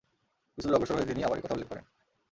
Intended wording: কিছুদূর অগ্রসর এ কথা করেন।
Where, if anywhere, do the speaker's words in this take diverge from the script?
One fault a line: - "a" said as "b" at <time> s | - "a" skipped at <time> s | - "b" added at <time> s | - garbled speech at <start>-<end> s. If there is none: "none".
- "হয়ে তিনি আবার" added at 1.0 s
- "উল্লেখ" added at 1.5 s